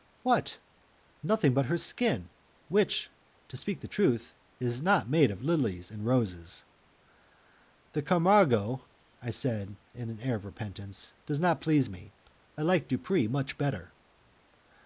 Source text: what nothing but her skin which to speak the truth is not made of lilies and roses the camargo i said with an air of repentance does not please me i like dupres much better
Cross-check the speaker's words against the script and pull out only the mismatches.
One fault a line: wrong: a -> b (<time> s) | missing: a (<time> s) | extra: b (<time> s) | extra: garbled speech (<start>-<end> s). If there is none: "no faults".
no faults